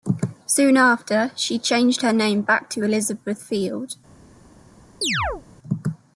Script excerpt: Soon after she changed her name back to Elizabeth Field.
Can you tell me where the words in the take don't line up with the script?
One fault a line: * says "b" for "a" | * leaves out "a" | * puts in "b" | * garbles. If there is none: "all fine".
all fine